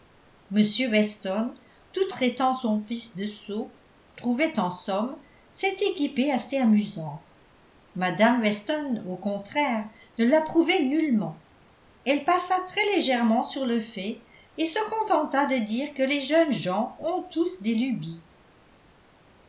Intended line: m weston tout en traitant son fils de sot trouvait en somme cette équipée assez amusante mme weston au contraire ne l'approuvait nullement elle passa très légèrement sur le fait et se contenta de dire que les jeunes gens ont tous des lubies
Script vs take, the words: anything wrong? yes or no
yes